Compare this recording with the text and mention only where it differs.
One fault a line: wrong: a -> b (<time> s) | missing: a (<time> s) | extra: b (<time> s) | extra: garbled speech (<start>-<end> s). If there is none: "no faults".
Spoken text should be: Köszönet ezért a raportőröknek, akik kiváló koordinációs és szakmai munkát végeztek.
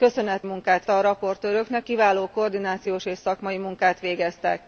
wrong: ezért -> munkát (0.4 s)
missing: akik (1.9 s)